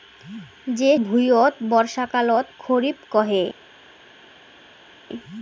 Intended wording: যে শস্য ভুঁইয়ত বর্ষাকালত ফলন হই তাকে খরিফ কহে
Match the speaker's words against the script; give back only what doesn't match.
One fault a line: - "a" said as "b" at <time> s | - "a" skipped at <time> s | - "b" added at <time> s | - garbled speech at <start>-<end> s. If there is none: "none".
- "শস্য" skipped at 0.9 s
- "ফলন হই তাকে" skipped at 2.5 s